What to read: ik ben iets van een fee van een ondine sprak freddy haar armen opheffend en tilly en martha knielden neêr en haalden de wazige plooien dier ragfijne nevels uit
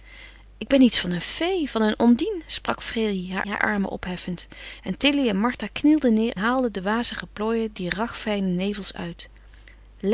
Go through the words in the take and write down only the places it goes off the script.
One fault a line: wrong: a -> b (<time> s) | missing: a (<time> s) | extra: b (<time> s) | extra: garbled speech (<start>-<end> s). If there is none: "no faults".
extra: haar (3.5 s)
missing: en (6.4 s)